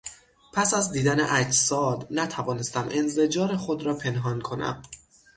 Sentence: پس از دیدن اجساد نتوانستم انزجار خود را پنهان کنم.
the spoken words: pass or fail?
pass